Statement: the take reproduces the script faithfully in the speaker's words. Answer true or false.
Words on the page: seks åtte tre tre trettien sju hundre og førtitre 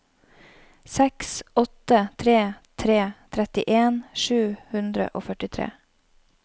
true